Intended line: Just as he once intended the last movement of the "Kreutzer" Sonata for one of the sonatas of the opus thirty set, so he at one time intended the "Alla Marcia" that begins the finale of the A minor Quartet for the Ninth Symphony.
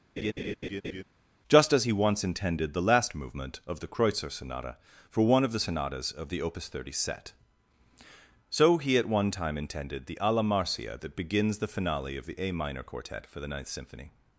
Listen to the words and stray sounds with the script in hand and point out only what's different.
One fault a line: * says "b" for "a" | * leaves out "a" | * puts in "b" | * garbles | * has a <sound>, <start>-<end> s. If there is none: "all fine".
* has a laugh, 0.2-1.0 s